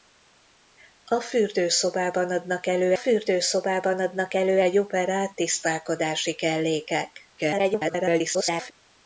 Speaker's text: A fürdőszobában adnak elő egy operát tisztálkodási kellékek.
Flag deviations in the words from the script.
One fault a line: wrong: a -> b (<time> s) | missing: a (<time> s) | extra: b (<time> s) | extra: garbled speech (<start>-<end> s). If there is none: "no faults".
extra: fürdőszobában adnak elő (2.9 s)
extra: garbled speech (7.4-8.7 s)